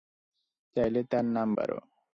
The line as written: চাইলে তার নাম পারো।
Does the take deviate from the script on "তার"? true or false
false